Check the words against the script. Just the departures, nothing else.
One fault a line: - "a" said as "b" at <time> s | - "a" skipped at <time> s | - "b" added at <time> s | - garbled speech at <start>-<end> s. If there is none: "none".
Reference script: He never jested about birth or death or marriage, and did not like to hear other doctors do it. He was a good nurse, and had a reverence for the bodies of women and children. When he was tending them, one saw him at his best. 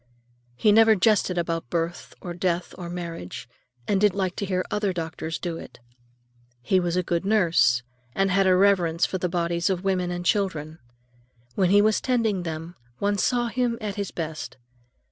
- "not" skipped at 4.2 s